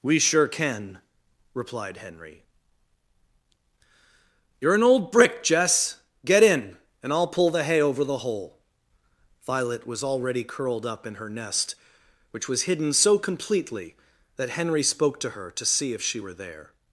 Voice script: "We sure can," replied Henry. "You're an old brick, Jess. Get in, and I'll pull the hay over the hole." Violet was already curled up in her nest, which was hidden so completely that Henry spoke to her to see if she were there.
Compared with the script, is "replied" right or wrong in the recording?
right